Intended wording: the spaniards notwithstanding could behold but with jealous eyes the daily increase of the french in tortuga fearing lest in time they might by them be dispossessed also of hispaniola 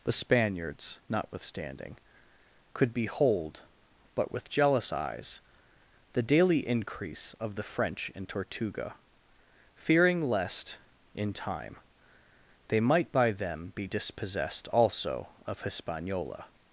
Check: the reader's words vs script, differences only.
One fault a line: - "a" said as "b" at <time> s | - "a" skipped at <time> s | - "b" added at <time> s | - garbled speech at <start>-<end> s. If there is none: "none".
none